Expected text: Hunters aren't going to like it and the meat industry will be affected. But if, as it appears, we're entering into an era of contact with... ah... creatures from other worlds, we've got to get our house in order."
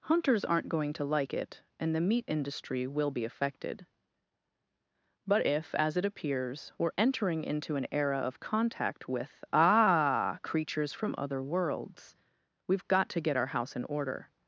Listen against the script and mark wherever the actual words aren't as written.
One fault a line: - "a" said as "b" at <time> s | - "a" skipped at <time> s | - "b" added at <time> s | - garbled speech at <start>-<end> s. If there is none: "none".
none